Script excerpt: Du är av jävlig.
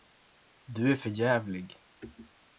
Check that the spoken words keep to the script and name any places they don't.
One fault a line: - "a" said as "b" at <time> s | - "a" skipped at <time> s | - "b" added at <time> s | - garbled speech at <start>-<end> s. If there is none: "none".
- "av" said as "för" at 0.9 s